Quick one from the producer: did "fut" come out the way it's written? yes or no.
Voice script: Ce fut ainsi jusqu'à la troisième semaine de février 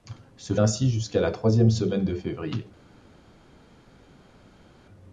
no